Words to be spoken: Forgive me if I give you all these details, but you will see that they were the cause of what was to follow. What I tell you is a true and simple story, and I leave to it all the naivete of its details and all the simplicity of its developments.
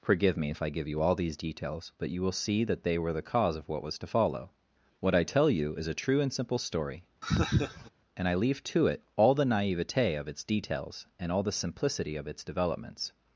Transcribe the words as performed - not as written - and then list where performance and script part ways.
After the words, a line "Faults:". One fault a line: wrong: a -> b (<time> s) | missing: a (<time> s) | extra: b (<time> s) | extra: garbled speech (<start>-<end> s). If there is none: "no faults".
Forgive me if I give you all these details, but you will see that they were the cause of what was to follow. What I tell you is a true and simple story, and I leave to it all the naivete of its details and all the simplicity of its developments.
Faults:
no faults